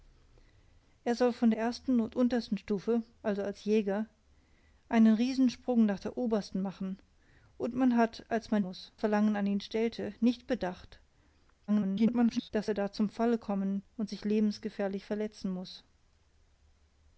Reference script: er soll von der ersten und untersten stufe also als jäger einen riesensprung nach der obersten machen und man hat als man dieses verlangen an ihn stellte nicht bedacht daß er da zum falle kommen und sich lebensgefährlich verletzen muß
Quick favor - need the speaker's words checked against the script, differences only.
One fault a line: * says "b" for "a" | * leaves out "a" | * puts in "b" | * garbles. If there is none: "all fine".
* leaves out "der"
* says "muß" for "dieses"
* garbles